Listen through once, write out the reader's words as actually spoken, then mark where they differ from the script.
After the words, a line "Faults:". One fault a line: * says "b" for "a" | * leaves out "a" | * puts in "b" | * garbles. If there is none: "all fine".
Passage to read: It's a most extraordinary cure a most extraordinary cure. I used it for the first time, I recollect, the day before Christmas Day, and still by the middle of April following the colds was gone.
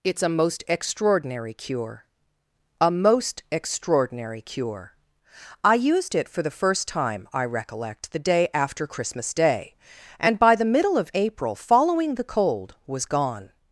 It's a most extraordinary cure a most extraordinary cure. I used it for the first time, I recollect, the day after Christmas Day, and by the middle of April following the cold was gone.
Faults:
* says "after" for "before"
* leaves out "still"
* says "cold" for "colds"